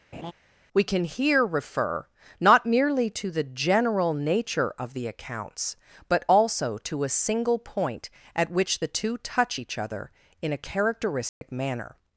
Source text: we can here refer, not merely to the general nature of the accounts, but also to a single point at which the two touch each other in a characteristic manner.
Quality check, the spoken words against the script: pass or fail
pass